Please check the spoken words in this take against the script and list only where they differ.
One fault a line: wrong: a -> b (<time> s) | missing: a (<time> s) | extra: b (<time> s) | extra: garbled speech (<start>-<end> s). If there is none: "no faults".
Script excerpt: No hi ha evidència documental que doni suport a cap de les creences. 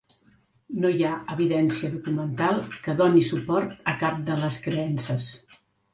no faults